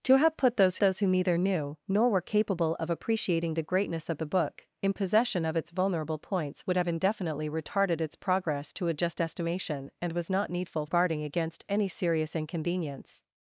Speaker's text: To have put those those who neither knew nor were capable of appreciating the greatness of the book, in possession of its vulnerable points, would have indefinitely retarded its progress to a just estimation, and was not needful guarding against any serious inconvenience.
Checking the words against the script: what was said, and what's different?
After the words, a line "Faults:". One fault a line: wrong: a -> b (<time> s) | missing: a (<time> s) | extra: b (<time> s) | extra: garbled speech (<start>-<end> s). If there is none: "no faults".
To have put those those who neither knew nor were capable of appreciating the greatness of the book, in possession of its vulnerable points, would have indefinitely retarded its progress to a just estimation, and was not needful guarding against any serious inconvenience.
Faults:
no faults